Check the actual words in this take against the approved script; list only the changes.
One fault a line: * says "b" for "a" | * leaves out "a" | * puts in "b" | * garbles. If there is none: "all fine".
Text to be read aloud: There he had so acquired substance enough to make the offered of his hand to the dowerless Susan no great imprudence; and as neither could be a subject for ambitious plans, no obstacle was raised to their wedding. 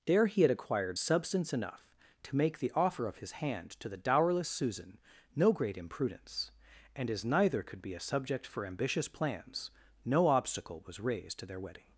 * leaves out "so"
* says "offer" for "offered"